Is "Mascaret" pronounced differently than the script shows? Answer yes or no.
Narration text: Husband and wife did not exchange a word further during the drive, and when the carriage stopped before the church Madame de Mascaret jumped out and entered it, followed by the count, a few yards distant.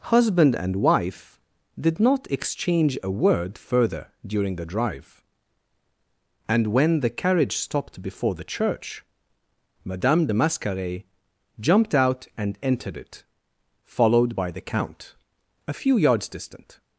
no